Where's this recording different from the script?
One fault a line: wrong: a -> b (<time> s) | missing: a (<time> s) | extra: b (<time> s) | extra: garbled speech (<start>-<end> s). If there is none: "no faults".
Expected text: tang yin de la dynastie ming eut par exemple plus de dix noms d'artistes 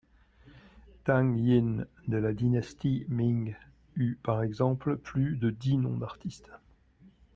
no faults